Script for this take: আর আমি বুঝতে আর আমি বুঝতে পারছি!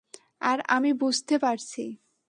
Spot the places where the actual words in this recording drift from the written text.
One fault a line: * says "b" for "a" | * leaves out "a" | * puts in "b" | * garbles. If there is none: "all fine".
* leaves out "আর আমি বুঝতে"